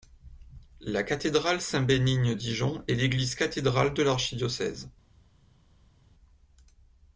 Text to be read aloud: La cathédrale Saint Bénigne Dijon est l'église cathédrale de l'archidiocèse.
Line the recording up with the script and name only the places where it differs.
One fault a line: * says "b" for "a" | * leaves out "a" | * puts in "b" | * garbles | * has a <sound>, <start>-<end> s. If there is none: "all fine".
all fine